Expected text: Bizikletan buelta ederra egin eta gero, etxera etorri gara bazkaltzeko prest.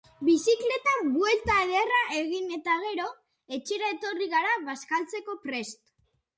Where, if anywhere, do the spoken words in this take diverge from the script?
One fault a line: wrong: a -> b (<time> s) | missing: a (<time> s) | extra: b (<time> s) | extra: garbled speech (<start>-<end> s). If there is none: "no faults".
no faults